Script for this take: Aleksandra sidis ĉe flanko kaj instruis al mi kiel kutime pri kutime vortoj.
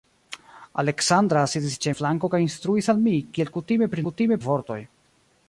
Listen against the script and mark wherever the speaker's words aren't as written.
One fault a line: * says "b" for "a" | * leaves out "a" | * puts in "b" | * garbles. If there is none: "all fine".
all fine